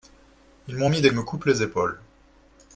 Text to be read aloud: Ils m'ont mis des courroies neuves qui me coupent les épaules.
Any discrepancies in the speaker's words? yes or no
yes